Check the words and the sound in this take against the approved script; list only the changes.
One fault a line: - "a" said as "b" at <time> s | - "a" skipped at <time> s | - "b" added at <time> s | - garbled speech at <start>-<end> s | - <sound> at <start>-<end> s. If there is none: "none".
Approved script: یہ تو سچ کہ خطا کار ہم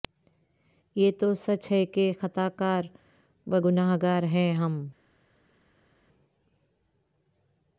- "ہے" added at 1.7 s
- "و گنہگار ہیں" added at 3.5 s